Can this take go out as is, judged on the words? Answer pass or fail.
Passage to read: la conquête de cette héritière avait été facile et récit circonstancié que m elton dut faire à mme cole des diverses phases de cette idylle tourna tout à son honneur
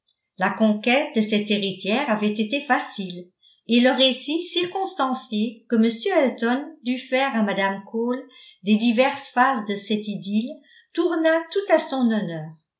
fail